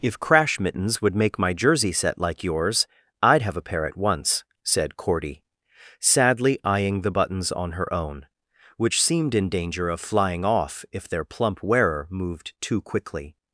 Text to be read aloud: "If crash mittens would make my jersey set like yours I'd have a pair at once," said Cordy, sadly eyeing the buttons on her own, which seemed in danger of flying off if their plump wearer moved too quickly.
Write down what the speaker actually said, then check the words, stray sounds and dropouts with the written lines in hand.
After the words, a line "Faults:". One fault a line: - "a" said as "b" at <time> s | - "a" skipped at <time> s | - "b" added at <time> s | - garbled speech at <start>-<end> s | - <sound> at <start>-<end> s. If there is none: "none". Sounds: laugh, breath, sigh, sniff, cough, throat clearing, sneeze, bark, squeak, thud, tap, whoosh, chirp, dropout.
"If crash mittens would make my jersey set like yours I'd have a pair at once," said Cordy, sadly eyeing the buttons on her own, which seemed in danger of flying off if their plump wearer moved too quickly.
Faults:
none